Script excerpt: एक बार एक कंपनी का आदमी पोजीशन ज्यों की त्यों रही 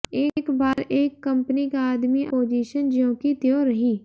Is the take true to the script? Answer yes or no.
yes